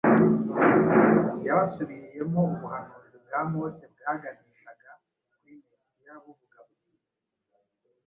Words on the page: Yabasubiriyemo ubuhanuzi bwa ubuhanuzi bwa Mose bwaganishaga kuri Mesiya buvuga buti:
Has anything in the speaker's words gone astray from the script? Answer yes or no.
yes